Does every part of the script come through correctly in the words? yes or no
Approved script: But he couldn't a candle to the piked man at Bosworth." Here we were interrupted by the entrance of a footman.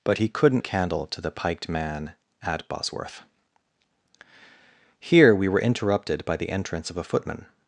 yes